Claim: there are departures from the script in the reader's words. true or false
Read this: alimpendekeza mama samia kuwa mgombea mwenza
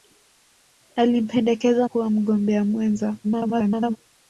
true